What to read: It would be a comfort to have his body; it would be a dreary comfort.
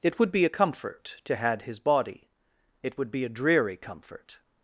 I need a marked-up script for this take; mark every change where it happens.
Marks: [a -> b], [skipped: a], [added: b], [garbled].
It would be a comfort to [have -> had] his body; it would be a dreary comfort.